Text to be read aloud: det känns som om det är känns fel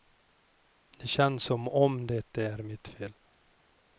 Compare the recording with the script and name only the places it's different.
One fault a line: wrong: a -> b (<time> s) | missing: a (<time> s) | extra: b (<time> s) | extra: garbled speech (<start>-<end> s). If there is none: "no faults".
wrong: känns -> mitt (2.6 s)